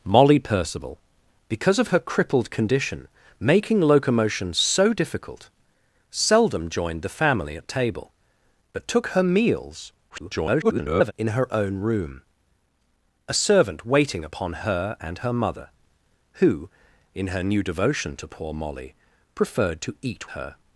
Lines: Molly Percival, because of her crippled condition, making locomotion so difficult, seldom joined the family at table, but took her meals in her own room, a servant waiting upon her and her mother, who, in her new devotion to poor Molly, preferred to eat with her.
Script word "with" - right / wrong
wrong